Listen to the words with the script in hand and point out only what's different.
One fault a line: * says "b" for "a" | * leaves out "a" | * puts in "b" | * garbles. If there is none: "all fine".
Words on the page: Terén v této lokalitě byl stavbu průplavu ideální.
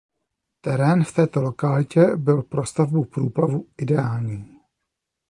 * puts in "pro"